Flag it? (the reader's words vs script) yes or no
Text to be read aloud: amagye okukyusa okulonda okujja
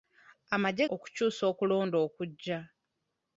no